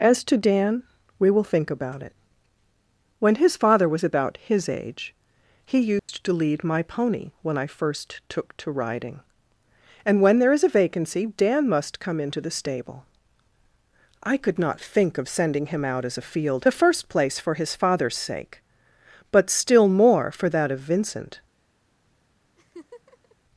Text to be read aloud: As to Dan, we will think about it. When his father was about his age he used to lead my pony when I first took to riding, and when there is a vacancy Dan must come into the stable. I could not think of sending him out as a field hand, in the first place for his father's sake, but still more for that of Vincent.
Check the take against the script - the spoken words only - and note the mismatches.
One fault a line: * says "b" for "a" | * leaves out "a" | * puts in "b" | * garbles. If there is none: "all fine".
* leaves out "hand in"